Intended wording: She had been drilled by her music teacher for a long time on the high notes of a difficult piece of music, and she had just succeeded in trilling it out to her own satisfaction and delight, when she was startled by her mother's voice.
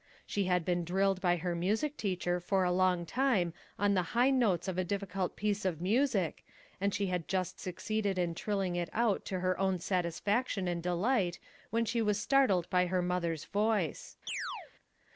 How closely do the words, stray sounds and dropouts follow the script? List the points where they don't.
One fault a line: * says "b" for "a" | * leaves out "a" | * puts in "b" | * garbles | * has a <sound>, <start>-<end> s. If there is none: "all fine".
* has a chirp, 14.3-14.7 s